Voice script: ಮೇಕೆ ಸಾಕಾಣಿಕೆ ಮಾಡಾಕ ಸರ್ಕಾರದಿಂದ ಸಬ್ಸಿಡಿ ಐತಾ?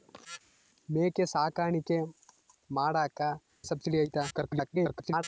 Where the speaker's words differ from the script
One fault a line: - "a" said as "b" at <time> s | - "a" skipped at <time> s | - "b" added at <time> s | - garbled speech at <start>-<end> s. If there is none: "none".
- "ಸರ್ಕಾರದಿಂದ" skipped at 3.2 s
- garbled speech at 4.3-5.2 s